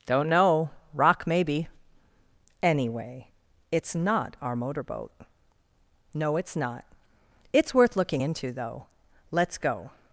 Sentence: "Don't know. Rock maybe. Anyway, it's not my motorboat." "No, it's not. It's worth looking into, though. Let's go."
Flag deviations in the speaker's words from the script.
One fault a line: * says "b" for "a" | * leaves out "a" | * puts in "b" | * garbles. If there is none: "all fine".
* says "our" for "my"